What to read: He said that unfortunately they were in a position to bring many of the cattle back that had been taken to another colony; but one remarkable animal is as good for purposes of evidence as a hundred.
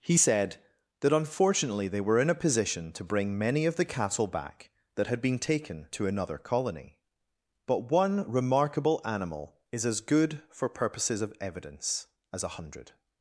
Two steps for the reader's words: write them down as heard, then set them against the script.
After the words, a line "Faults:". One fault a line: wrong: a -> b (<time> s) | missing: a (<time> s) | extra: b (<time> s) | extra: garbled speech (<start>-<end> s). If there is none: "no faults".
He said that unfortunately they were in a position to bring many of the cattle back that had been taken to another colony; but one remarkable animal is as good for purposes of evidence as a hundred.
Faults:
no faults